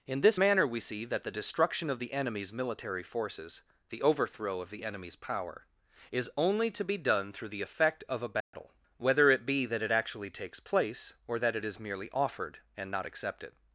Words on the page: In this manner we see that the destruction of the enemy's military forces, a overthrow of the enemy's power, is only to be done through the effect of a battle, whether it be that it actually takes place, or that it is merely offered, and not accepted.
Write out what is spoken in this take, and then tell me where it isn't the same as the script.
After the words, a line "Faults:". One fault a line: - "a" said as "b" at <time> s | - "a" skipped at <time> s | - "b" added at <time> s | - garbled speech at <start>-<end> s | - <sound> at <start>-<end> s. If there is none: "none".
In this manner we see that the destruction of the enemy's military forces, the overthrow of the enemy's power, is only to be done through the effect of a battle, whether it be that it actually takes place, or that it is merely offered, and not accepted.
Faults:
- "a" said as "the" at 3.9 s
- dropout at 8.4-8.5 s